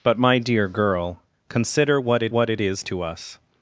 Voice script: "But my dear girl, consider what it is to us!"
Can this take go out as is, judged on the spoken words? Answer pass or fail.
fail